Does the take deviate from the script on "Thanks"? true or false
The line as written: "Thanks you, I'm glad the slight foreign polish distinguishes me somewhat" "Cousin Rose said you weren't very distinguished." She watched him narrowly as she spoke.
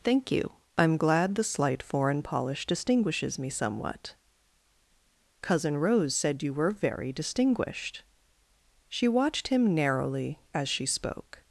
true